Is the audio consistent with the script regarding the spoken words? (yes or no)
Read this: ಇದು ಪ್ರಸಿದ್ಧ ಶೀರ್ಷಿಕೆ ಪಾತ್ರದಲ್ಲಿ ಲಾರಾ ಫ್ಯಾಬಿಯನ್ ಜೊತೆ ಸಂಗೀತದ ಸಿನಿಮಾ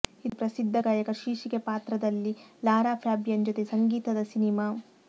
no